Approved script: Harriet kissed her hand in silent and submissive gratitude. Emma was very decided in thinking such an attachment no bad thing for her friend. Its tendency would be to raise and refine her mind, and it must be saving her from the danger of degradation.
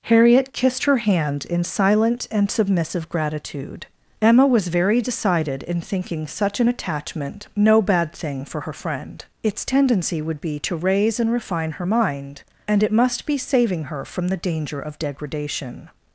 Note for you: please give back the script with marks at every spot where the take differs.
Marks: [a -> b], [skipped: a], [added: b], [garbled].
Harriet kissed her hand in silent and submissive gratitude. Emma was very decided in thinking such an attachment no bad thing for her friend. Its tendency would be to raise and refine her mind, and it must be saving her from the danger of degradation.